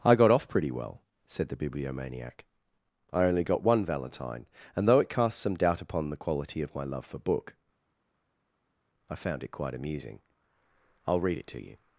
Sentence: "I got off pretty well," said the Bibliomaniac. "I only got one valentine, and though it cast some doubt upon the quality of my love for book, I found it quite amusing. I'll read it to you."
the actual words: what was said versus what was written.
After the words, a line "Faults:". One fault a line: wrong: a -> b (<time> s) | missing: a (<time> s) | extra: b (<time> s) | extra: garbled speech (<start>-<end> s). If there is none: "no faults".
"I got off pretty well," said the Bibliomaniac. "I only got one valentine, and though it cast some doubt upon the quality of my love for book, I found it quite amusing. I'll read it to you."
Faults:
no faults